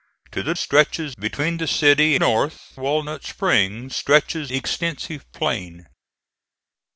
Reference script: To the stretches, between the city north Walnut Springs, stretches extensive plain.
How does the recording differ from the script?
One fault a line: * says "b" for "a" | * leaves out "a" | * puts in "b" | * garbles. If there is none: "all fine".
all fine